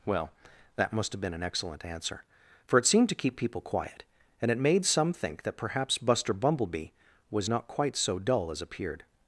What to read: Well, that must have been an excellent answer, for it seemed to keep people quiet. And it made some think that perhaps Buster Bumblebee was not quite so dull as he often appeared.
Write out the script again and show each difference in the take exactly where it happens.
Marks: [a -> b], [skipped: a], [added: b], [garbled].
Well, that must have been an excellent answer, for it seemed to keep people quiet. And it made some think that perhaps Buster Bumblebee was not quite so dull as [skipped: he often] appeared.